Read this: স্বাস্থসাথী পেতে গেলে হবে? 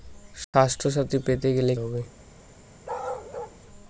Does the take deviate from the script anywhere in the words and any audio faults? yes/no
yes